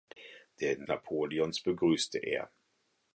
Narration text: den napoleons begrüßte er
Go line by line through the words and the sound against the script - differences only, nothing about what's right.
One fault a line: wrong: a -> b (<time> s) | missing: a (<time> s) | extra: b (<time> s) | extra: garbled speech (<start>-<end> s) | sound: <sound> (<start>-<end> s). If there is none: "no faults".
no faults